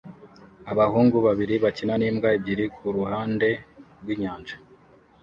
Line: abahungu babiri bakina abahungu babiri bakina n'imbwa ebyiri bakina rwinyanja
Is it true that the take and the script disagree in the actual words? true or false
true